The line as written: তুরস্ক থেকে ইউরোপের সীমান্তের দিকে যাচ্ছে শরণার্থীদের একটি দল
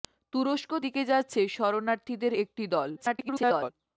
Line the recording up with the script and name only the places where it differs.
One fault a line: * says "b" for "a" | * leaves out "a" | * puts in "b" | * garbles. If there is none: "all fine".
* leaves out "থেকে ইউরোপের সীমান্তের"
* garbles